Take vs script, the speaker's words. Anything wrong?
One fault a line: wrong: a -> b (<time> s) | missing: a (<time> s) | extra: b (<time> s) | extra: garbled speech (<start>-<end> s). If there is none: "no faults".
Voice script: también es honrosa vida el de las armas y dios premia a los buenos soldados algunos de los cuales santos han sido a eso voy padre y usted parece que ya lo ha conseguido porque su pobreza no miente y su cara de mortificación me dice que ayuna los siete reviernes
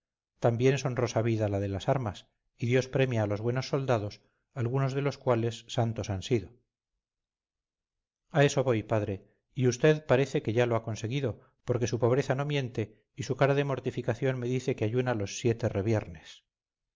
wrong: el -> la (1.5 s)